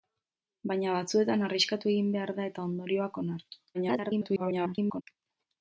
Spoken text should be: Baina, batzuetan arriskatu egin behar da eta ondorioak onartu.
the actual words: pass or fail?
fail